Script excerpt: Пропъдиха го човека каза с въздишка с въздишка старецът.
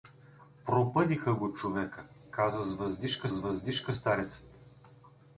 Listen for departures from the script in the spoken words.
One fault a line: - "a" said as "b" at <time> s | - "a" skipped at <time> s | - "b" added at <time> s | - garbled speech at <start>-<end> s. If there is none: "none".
none